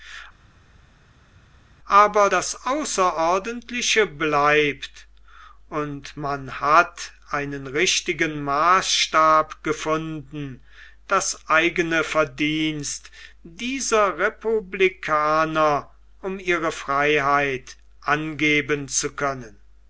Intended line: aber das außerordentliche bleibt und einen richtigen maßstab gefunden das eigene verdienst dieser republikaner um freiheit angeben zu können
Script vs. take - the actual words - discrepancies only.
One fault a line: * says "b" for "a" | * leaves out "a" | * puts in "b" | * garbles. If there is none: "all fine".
* puts in "man hat"
* puts in "ihre"